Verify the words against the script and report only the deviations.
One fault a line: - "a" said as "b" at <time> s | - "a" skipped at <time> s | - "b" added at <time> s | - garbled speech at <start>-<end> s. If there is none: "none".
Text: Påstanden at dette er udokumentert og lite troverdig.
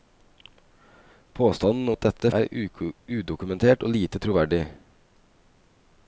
none